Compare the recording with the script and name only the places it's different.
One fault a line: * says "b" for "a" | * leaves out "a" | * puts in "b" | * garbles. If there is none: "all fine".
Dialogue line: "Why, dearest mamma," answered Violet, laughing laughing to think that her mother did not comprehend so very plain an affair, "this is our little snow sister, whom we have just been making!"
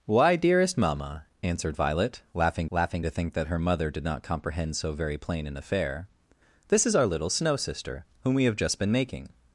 all fine